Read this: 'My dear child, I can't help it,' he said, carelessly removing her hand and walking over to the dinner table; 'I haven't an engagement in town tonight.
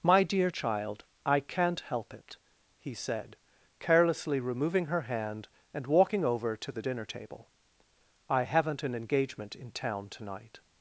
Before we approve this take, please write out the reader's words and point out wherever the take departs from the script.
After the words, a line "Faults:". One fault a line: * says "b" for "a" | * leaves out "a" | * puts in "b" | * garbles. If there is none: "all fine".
'My dear child, I can't help it,' he said, carelessly removing her hand and walking over to the dinner table; 'I haven't an engagement in town tonight.
Faults:
all fine